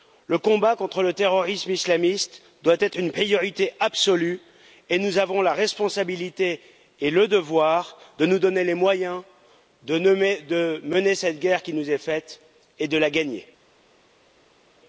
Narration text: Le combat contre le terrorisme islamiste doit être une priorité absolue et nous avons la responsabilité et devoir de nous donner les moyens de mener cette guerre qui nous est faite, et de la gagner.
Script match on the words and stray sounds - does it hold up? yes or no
no